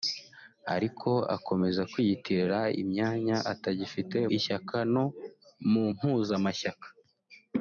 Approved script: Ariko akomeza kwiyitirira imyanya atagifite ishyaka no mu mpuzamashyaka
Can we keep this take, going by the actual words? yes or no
yes